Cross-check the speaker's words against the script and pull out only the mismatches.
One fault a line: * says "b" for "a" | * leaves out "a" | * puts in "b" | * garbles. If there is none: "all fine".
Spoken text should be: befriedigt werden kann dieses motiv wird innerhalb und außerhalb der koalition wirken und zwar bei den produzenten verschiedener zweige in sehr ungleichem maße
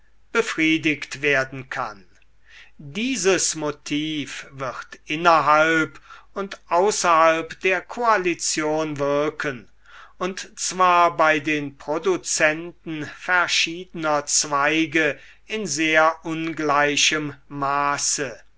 all fine